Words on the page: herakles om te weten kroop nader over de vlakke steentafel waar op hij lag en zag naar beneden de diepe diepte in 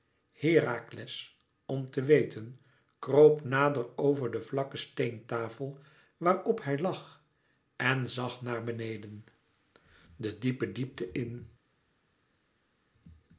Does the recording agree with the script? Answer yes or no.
yes